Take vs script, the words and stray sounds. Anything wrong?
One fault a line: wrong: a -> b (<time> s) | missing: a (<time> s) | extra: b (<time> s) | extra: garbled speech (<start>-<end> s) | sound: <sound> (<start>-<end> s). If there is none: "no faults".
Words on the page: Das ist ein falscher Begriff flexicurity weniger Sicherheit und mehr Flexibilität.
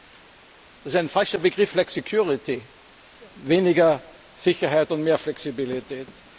no faults